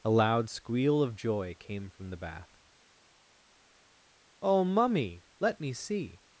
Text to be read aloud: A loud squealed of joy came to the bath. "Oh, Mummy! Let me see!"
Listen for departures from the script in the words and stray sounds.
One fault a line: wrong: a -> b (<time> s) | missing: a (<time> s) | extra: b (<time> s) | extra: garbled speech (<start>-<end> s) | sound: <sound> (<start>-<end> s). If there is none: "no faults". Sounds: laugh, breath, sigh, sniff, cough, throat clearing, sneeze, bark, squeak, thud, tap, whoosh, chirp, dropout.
wrong: squealed -> squeal (0.5 s)
wrong: to -> from (1.9 s)